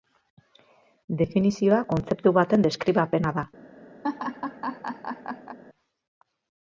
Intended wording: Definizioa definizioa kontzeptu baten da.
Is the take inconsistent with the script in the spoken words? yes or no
yes